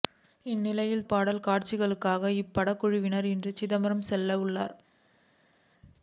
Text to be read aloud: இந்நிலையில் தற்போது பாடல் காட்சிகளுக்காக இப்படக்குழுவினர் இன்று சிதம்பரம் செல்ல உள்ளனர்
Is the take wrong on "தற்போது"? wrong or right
wrong